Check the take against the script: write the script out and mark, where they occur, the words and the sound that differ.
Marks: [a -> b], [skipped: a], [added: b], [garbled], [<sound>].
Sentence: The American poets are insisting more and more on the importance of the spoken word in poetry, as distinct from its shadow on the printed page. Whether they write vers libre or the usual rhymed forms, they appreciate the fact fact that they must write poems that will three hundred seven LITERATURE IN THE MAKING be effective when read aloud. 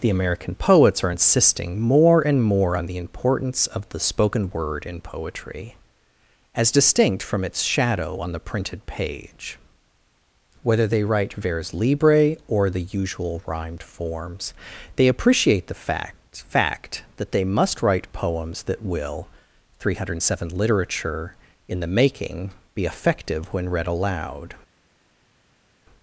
The American poets are insisting more and more on the importance of the spoken word in poetry, as distinct from its shadow on the printed page. Whether they write vers libre or the usual rhymed forms, they appreciate the fact fact that they must write poems that will three hundred seven LITERATURE IN THE MAKING be effective when read aloud.